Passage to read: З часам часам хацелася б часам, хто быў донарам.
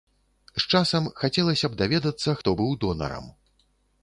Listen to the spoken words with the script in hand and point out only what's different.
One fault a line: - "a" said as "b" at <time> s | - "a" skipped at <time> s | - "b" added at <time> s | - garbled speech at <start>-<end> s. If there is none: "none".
- "часам" skipped at 1.1 s
- "часам" said as "даведацца" at 1.8 s